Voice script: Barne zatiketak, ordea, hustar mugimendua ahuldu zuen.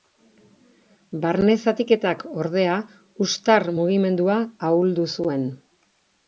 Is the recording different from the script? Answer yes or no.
no